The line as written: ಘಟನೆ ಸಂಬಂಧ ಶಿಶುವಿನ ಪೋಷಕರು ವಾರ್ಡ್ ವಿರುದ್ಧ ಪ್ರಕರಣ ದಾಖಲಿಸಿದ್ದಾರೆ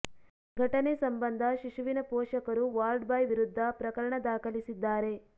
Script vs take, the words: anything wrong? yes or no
yes